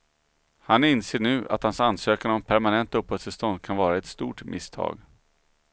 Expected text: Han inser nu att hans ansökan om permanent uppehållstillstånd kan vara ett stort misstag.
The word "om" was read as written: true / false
true